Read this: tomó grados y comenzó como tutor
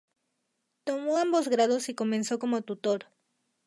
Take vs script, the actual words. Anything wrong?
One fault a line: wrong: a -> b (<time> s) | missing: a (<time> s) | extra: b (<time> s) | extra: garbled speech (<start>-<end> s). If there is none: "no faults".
extra: ambos (1.2 s)